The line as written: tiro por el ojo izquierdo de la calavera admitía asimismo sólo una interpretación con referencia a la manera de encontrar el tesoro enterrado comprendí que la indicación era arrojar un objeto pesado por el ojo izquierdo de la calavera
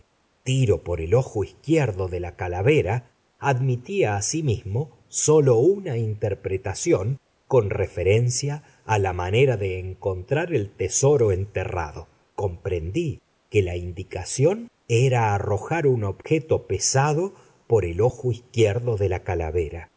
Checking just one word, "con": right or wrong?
right